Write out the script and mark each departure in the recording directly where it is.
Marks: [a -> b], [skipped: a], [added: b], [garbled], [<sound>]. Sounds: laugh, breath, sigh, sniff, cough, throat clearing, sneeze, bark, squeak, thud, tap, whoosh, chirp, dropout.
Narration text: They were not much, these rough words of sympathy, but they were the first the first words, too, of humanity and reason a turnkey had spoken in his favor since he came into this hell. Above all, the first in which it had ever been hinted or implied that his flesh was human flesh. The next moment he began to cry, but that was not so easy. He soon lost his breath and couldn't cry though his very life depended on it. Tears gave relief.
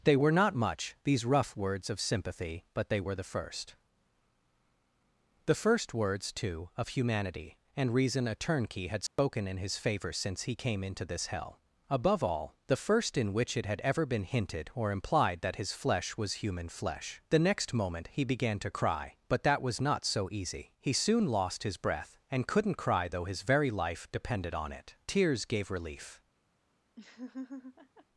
They were not much, these rough words of sympathy, but they were the first the first words, too, of humanity and reason a turnkey had spoken [dropout] in his favor since he came into this hell. Above all, the first in which it had ever been hinted or implied that his flesh was human flesh. The next moment he began to cry, but that was not so easy. He soon lost his breath and couldn't cry though his very life depended on it. Tears gave relief. [laugh]